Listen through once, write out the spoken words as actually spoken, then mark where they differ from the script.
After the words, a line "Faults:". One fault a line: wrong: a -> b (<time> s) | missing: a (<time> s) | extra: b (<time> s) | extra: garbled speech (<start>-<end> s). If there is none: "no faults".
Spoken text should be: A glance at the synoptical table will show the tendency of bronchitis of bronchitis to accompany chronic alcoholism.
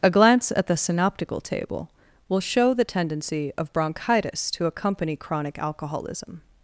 A glance at the synoptical table will show the tendency of bronchitis to accompany chronic alcoholism.
Faults:
missing: of bronchitis (4.5 s)